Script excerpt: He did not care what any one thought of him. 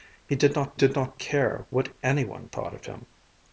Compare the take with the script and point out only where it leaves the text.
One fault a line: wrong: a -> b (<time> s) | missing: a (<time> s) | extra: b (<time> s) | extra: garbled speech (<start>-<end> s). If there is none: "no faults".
extra: did not (0.7 s)